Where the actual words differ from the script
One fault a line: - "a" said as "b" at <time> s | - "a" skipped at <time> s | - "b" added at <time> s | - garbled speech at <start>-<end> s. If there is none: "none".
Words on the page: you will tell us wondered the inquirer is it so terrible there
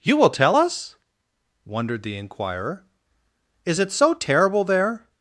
none